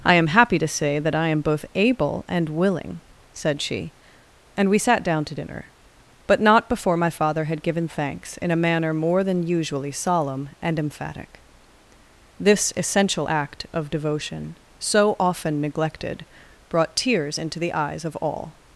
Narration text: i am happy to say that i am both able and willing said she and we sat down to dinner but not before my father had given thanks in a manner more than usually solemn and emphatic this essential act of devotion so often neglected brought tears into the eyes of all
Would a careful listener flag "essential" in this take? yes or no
no